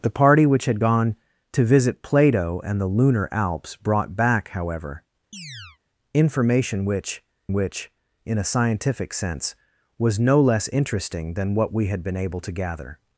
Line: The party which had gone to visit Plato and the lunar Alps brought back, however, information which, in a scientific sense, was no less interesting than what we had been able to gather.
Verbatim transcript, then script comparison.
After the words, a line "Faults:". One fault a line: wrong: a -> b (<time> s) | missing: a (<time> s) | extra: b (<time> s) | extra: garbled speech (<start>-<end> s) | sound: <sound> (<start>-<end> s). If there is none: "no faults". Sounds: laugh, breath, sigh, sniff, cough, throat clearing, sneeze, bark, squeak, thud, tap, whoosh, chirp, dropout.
The party which had gone to visit Plato and the lunar Alps brought back, however, information which which, in a scientific sense, was no less interesting than what we had been able to gather.
Faults:
sound: chirp (5.3-5.8 s)
extra: which (7.5 s)